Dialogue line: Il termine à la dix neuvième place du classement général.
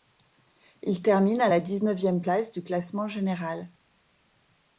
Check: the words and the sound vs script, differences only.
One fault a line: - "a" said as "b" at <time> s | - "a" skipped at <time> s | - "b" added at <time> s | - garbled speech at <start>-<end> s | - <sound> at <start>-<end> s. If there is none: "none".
none